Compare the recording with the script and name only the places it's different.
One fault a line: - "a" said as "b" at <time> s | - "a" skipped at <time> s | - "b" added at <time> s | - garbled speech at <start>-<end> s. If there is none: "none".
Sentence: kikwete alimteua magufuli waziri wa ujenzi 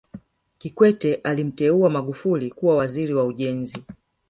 - "kuwa" added at 2.5 s